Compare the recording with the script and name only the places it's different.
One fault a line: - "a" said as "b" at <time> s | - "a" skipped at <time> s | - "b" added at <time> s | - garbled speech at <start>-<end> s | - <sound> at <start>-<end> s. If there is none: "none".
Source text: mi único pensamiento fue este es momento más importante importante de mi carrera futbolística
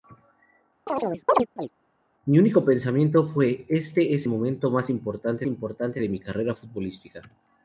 - chirp at 0.9-1.7 s